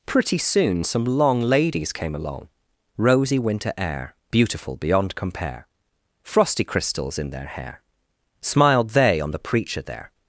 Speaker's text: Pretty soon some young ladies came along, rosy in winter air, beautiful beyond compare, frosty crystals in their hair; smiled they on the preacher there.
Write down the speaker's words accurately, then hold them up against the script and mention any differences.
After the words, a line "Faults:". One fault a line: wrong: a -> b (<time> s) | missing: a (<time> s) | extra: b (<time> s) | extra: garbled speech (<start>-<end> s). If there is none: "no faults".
Pretty soon some long ladies came along, rosy winter air, beautiful beyond compare, frosty crystals in their hair; smiled they on the preacher there.
Faults:
wrong: young -> long (1.1 s)
missing: in (3.4 s)